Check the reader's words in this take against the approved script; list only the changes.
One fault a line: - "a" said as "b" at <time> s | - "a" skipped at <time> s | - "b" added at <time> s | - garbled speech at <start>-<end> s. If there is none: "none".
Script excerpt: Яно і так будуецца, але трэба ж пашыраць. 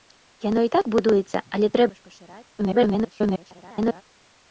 - garbled speech at 2.6-4.0 s